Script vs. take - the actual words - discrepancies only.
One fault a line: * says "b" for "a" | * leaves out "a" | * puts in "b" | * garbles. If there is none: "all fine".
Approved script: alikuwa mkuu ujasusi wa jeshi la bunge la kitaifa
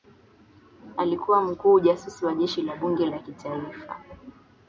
all fine